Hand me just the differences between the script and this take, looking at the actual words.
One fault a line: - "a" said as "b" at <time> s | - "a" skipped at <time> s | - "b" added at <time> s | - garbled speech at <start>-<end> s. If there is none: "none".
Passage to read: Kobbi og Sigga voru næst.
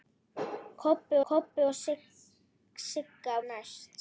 - "kobbi" added at 1.3 s
- "voru" skipped at 3.3 s